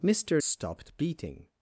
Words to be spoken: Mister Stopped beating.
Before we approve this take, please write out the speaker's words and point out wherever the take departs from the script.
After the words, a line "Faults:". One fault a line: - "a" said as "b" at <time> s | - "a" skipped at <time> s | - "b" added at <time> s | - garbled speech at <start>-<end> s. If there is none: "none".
Mister Stopped beating.
Faults:
none